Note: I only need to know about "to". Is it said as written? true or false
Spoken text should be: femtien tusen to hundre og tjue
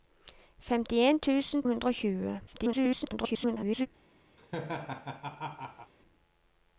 false